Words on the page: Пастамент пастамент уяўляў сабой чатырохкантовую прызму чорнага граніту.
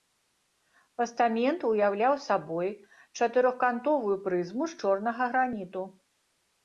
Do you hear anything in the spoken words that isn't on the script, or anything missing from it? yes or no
yes